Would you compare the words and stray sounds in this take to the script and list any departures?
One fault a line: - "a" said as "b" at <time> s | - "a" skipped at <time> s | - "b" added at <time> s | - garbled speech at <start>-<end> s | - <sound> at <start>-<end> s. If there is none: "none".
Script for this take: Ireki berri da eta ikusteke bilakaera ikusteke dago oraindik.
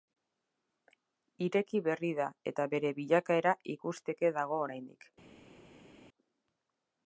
- "ikusteke" said as "bere" at 2.8 s